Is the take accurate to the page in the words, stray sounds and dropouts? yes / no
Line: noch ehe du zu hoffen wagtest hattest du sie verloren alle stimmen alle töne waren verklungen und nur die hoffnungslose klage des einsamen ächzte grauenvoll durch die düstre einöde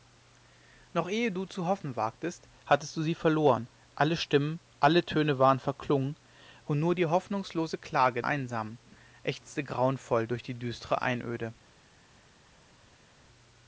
no